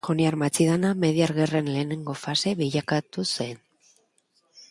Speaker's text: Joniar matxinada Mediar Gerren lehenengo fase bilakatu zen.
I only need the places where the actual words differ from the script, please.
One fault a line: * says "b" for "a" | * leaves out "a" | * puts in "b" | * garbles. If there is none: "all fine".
all fine